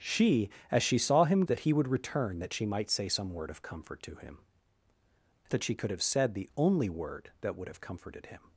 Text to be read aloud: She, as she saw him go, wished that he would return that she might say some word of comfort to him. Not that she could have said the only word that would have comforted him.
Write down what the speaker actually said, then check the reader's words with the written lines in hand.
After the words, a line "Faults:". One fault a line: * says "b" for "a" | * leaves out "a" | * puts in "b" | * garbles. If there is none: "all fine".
She, as she saw him that he would return that she might say some word of comfort to him. That she could have said the only word that would have comforted him.
Faults:
* leaves out "go wished"
* leaves out "Not"